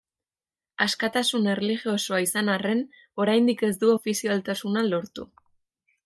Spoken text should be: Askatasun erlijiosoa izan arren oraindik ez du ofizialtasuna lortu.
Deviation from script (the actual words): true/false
false